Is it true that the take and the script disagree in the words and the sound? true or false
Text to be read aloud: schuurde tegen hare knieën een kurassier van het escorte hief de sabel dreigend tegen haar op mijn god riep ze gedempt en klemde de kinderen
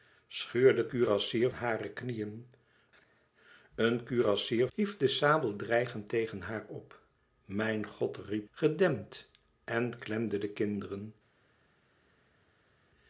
true